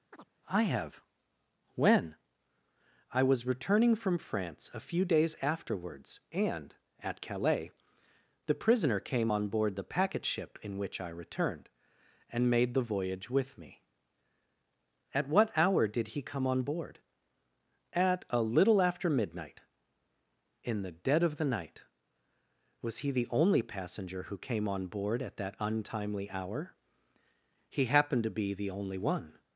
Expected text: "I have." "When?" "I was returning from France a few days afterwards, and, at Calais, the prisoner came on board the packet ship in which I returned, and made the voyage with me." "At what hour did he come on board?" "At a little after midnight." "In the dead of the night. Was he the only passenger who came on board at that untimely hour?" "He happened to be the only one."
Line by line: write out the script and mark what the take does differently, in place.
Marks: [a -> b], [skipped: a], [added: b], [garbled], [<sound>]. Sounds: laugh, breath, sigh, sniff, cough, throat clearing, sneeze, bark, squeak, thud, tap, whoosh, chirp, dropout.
[chirp] "I have." "When?" "I was returning from France a few days afterwards, and, at Calais, the prisoner came on board the packet ship in which I returned, and made the voyage with me." "At what hour did he come on board?" "At a little after midnight." "In the dead of the night. Was he the only passenger who came on board at that untimely hour?" "He happened to be the only one."